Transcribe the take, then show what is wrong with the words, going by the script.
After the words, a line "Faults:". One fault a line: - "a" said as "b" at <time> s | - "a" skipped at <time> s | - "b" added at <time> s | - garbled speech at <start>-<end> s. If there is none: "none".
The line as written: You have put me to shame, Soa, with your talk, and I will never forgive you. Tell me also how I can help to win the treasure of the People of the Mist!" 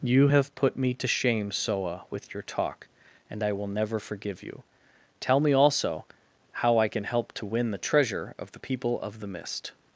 You have put me to shame, Soa, with your talk, and I will never forgive you. Tell me also how I can help to win the treasure of the People of the Mist!"
Faults:
none